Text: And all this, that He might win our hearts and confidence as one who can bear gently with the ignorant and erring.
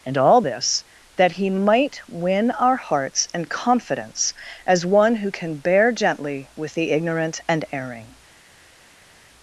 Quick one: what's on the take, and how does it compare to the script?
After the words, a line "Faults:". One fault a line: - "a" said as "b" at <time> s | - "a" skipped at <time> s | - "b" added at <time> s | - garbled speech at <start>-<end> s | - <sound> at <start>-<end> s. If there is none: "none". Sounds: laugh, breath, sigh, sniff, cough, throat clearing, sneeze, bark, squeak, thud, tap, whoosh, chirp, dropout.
And all this, that He might win our hearts and confidence as one who can bear gently with the ignorant and erring.
Faults:
none